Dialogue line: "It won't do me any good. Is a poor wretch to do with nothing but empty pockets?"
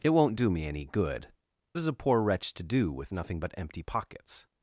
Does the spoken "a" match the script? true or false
true